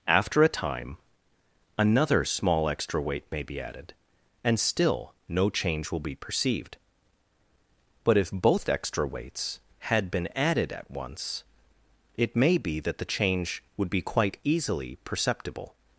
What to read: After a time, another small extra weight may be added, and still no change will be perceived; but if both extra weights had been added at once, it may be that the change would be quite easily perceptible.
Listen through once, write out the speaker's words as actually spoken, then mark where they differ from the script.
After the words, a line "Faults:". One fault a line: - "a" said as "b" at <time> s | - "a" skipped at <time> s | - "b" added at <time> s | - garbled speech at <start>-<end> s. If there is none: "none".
After a time, another small extra weight may be added, and still no change will be perceived; but if both extra weights had been added at once, it may be that the change would be quite easily perceptible.
Faults:
none